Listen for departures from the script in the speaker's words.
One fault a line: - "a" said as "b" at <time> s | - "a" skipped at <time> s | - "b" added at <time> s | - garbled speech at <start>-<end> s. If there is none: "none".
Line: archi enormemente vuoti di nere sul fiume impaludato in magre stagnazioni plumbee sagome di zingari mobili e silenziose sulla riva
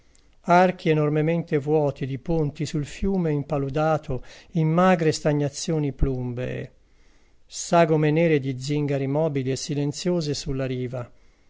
- "nere" said as "ponti" at 2.2 s
- "nere" added at 8.1 s